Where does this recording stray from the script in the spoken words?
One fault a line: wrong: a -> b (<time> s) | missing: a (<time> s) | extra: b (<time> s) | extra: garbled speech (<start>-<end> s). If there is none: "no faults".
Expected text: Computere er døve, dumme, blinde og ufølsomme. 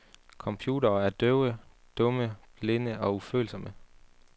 no faults